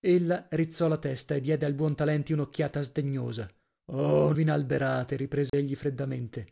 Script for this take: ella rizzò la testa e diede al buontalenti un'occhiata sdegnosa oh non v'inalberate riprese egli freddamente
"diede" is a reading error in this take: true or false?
false